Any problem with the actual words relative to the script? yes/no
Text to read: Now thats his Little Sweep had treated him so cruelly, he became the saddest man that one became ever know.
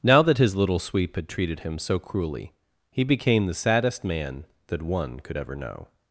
yes